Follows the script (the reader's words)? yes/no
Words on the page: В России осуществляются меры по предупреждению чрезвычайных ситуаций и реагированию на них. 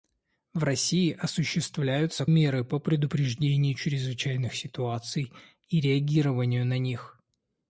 yes